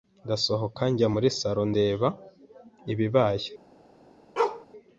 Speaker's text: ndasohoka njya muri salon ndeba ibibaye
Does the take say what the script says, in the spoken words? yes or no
yes